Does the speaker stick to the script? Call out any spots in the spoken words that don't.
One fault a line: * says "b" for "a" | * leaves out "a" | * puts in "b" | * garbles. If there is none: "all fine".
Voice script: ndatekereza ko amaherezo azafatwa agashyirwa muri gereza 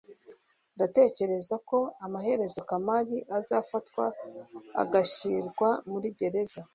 * puts in "kamali"